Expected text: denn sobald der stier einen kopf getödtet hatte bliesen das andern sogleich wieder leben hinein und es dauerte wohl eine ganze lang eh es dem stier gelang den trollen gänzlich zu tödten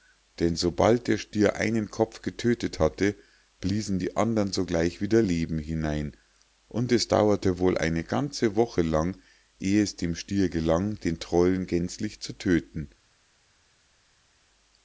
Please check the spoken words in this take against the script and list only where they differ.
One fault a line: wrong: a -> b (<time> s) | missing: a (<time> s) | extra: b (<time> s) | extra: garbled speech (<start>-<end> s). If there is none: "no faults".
wrong: das -> die (4.0 s)
extra: woche (8.5 s)